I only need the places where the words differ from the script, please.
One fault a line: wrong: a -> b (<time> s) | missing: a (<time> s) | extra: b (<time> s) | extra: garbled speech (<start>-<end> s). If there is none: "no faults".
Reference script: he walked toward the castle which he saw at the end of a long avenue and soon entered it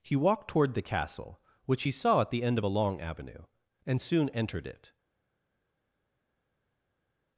no faults